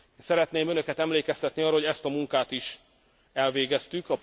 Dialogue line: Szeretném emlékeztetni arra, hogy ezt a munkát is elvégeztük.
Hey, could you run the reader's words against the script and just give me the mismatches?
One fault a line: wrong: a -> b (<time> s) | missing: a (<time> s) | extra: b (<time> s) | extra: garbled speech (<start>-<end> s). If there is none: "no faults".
extra: önöket (0.7 s)